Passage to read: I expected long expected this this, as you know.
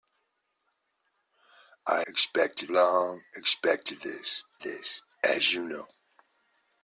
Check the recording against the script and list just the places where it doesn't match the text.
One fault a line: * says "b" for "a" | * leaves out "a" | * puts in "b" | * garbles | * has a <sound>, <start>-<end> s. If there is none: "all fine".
all fine